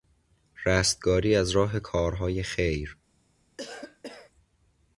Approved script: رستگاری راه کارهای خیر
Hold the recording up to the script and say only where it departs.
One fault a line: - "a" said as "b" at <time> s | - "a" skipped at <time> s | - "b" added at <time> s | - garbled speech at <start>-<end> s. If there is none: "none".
- "از" added at 1.4 s